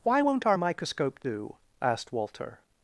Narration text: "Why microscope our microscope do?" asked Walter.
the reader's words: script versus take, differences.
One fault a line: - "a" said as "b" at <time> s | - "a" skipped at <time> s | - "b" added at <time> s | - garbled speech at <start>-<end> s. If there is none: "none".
- "microscope" said as "won't" at 0.2 s